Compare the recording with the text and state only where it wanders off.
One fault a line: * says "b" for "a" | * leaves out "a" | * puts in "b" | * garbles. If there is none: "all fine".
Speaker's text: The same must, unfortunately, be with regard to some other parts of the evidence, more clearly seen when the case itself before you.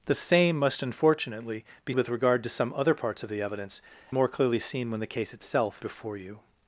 all fine